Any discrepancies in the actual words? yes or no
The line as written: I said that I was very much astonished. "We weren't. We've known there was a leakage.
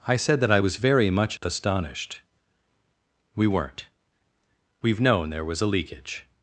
no